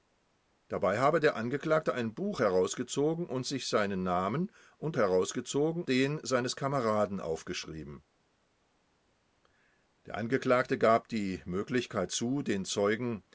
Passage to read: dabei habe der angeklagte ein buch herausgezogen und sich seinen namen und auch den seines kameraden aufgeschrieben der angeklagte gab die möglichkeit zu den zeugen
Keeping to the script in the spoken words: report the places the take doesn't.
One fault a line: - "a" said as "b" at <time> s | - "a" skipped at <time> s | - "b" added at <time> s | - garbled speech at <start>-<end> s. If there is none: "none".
- "auch" said as "herausgezogen" at 5.0 s